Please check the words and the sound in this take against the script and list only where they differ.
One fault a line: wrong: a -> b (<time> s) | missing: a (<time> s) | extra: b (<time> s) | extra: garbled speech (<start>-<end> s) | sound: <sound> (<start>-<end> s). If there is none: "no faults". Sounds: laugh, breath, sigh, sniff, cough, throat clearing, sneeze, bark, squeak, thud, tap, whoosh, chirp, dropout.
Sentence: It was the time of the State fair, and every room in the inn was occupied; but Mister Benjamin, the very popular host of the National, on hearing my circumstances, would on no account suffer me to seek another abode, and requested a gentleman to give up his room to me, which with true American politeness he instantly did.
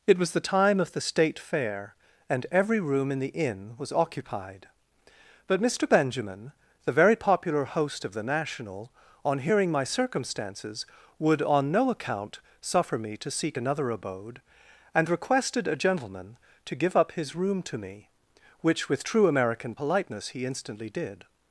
no faults